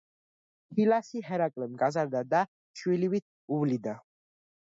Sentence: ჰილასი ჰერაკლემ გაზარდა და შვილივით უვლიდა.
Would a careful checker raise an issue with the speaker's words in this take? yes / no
no